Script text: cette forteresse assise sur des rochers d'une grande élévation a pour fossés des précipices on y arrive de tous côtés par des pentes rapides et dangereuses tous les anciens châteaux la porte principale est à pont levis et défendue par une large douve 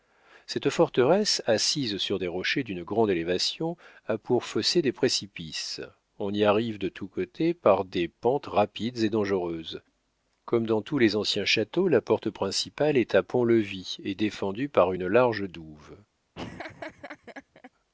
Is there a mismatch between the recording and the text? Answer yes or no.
yes